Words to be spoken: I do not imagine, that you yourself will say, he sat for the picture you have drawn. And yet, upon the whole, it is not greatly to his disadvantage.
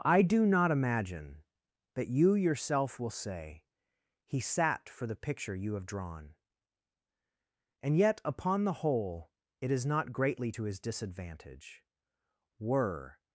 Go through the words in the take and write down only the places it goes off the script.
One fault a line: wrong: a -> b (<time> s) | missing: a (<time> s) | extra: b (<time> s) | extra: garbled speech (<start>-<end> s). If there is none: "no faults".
extra: Were (12.6 s)